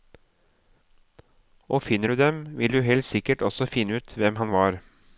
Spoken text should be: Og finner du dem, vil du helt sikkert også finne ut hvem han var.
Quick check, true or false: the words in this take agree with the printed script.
true